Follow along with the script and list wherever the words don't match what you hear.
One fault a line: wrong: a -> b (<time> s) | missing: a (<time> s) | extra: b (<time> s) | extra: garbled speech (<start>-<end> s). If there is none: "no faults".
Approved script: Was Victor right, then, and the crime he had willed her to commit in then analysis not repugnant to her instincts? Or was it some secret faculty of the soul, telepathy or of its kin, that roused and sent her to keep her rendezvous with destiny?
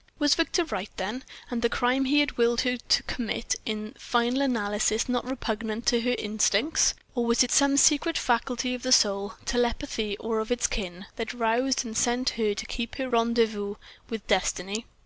wrong: then -> final (4.0 s)